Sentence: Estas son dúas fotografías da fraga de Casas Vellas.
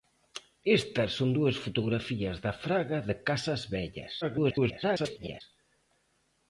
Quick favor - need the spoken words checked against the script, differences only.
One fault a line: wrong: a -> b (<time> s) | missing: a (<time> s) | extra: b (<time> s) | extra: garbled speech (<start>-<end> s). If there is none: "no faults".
extra: garbled speech (4.2-5.4 s)